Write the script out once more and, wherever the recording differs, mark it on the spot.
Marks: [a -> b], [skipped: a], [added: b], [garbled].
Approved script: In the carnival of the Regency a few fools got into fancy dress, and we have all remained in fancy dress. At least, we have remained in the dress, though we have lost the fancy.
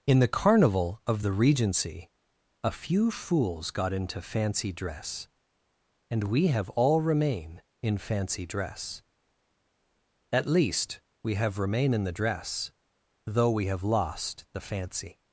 In the carnival of the Regency a few fools got into fancy dress, and we have all [remained -> remain] in fancy dress. At least, we have [remained -> remain] in the dress, though we have lost the fancy.